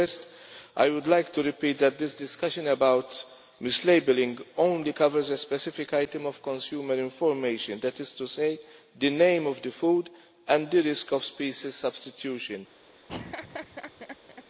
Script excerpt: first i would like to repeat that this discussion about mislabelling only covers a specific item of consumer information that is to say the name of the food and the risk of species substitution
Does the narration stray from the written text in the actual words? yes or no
no